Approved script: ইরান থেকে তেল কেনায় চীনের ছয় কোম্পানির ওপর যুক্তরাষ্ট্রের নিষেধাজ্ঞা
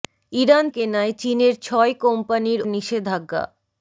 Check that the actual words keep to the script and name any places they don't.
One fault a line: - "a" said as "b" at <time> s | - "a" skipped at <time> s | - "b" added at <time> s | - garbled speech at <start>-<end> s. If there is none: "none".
- "থেকে তেল" skipped at 0.7 s
- "ওপর যুক্তরাষ্ট্রের" skipped at 2.6 s